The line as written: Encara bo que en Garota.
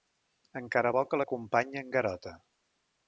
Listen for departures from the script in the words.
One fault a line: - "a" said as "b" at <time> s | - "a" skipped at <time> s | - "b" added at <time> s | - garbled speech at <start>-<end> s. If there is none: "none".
- "l'acompanya" added at 1.2 s